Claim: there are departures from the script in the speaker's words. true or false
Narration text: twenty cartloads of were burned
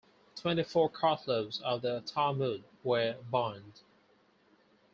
true